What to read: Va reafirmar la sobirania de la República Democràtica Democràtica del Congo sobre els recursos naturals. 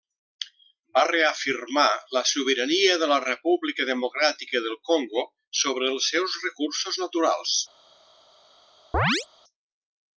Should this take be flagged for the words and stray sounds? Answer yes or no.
yes